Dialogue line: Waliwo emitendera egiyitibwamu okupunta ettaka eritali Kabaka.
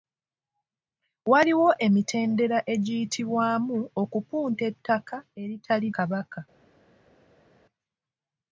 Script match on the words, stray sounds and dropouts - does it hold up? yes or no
yes